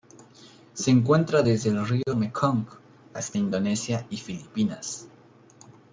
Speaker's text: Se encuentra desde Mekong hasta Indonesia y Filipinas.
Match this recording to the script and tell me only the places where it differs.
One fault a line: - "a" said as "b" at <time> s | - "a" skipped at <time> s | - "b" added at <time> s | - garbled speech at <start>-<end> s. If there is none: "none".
- "el río" added at 1.7 s